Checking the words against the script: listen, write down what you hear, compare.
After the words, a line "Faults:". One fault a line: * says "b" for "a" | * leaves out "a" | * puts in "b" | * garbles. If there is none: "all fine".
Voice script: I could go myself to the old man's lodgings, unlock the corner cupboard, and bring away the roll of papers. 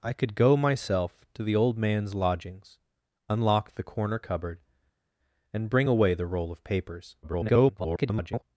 I could go myself to the old man's lodgings, unlock the corner cupboard, and bring away the roll of papers. [garbled]
Faults:
* garbles